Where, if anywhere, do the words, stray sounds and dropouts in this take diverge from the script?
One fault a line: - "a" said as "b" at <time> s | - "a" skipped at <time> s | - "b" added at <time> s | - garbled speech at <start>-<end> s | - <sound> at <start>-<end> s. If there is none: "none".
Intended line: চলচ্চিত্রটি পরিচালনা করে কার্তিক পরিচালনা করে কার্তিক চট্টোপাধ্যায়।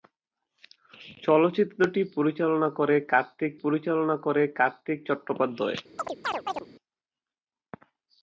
- chirp at 6.0-6.7 s